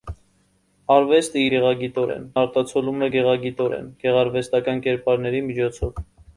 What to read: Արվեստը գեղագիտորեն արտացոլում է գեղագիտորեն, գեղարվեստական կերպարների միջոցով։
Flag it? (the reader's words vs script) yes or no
no